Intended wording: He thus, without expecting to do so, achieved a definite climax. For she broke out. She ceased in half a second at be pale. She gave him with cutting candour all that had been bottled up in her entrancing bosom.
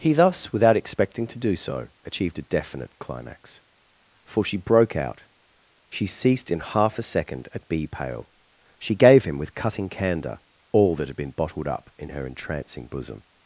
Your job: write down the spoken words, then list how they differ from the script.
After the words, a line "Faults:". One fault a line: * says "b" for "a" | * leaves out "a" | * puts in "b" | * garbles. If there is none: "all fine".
He thus, without expecting to do so, achieved a definite climax. For she broke out. She ceased in half a second at be pale. She gave him with cutting candour all that had been bottled up in her entrancing bosom.
Faults:
all fine